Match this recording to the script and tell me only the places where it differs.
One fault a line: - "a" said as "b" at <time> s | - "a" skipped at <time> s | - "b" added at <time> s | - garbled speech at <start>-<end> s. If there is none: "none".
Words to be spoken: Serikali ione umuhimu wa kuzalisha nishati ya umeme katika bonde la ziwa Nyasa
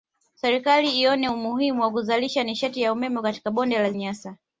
- "ziwa" skipped at 3.9 s